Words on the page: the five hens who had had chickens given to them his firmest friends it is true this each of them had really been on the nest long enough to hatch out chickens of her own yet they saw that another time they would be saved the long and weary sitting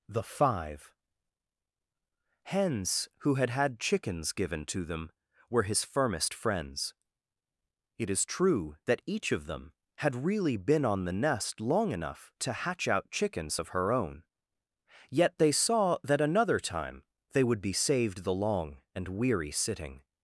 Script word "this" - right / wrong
wrong